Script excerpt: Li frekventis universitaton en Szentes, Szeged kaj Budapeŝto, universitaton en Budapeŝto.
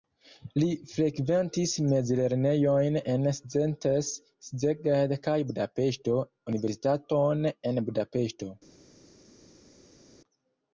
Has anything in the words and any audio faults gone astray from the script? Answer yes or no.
yes